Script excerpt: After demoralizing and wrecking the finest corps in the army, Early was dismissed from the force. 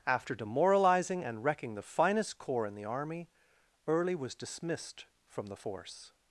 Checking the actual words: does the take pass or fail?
pass